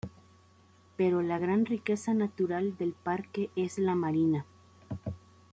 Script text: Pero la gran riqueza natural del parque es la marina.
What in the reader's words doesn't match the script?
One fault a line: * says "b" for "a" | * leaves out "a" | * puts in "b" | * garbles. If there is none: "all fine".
all fine